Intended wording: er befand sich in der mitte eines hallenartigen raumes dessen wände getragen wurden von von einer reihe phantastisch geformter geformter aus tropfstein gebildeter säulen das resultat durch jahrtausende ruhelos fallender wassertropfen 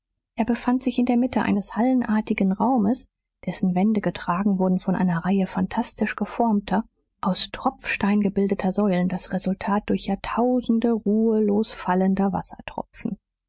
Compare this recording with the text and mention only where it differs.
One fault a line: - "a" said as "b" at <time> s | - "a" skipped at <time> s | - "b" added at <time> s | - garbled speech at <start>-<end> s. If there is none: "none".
- "von" skipped at 5.0 s
- "geformter" skipped at 6.8 s